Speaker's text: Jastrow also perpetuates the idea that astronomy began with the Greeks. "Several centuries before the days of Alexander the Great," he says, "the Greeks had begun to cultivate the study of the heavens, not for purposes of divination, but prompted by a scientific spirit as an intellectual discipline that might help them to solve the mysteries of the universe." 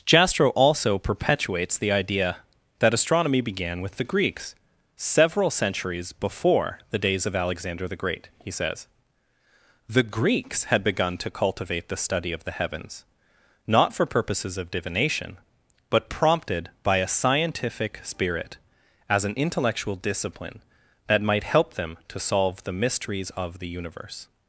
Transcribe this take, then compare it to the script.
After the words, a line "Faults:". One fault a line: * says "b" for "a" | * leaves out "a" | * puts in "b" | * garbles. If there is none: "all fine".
Jastrow also perpetuates the idea that astronomy began with the Greeks. "Several centuries before the days of Alexander the Great," he says, "the Greeks had begun to cultivate the study of the heavens, not for purposes of divination, but prompted by a scientific spirit as an intellectual discipline that might help them to solve the mysteries of the universe."
Faults:
all fine